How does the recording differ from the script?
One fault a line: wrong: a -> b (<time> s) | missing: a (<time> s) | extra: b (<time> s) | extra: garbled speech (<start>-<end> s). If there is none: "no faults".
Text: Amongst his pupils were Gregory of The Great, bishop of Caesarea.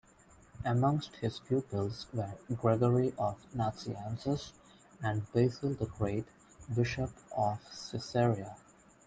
extra: Nazianzus and Basil (3.5 s)